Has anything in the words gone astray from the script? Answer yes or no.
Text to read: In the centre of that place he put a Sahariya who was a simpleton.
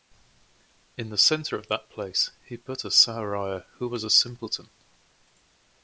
no